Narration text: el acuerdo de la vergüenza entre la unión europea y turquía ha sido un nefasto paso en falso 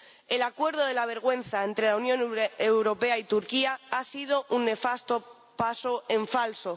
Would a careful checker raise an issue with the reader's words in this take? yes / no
no